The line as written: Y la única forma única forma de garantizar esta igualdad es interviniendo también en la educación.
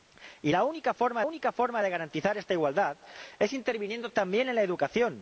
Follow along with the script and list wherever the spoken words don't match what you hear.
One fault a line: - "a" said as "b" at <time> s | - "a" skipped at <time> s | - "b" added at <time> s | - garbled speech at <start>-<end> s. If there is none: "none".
none